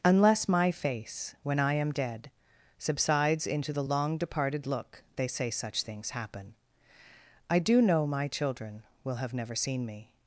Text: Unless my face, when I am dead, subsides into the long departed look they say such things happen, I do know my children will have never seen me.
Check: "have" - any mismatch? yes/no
no